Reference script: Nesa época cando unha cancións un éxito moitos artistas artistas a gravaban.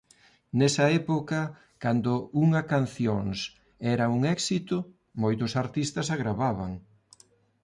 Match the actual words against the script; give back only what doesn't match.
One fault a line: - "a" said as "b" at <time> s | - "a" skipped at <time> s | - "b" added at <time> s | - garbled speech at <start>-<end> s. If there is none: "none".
- "era" added at 3.9 s
- "artistas" skipped at 6.1 s